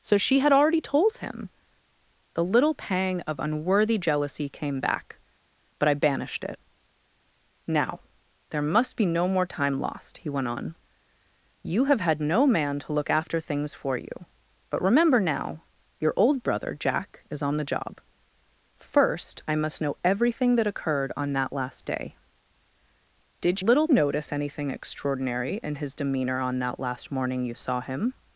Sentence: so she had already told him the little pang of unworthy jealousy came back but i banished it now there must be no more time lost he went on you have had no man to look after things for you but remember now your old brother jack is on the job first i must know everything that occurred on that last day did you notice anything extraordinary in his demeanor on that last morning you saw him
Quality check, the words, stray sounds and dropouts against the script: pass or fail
fail